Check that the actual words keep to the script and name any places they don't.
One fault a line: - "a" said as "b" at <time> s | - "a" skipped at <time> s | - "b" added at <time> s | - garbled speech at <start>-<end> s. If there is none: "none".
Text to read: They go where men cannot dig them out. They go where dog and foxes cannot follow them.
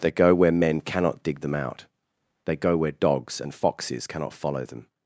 - "dog" said as "dogs" at 2.9 s